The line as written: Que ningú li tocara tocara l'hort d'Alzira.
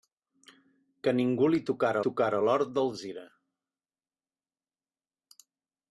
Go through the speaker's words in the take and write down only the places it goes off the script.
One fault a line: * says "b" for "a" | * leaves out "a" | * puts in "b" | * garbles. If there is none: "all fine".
all fine